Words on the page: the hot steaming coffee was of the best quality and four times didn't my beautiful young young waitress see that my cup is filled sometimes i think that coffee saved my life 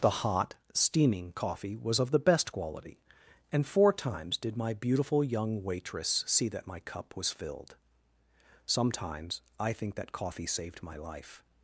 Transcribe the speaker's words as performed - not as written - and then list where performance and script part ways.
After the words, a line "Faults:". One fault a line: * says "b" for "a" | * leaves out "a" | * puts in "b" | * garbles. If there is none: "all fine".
the hot steaming coffee was of the best quality and four times did my beautiful young waitress see that my cup was filled sometimes i think that coffee saved my life
Faults:
* says "did" for "didn't"
* leaves out "young"
* says "was" for "is"